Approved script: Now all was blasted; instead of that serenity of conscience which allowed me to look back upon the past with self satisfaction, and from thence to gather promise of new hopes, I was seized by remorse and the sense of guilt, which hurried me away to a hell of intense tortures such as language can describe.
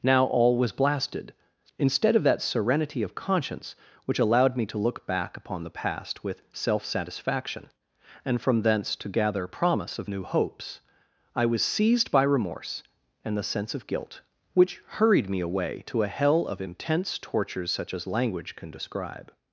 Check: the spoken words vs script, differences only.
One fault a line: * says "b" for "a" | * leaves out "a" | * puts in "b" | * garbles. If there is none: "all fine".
all fine